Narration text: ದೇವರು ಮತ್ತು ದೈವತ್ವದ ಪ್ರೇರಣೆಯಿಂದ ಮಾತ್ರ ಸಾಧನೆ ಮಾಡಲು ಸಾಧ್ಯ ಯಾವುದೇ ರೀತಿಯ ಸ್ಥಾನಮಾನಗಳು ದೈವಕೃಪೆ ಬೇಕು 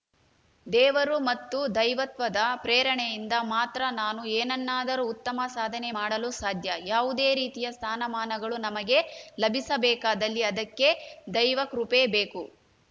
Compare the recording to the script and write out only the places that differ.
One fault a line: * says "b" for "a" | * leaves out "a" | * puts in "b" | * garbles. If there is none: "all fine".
* puts in "ನಾನು ಏನನ್ನಾದರೂ ಉತ್ತಮ"
* puts in "ನಮಗೆ ಲಭಿಸಬೇಕಾದಲ್ಲಿ ಅದಕ್ಕೆ"